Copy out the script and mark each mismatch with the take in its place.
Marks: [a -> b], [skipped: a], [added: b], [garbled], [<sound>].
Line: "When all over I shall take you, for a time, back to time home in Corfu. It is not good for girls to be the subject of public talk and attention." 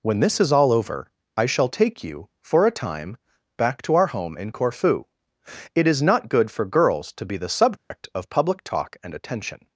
"When [added: this is] all over I shall take you, for a time, back to [time -> our] home in Corfu. It is not good for girls to be the subject [dropout] of public talk and attention."